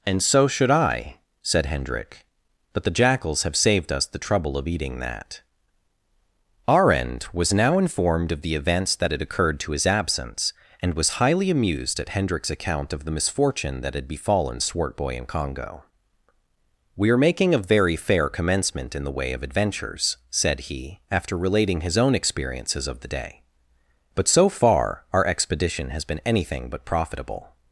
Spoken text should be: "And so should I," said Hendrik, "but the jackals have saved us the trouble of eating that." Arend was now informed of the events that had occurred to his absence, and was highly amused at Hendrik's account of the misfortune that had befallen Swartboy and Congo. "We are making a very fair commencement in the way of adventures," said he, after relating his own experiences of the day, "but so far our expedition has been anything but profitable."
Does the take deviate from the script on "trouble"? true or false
false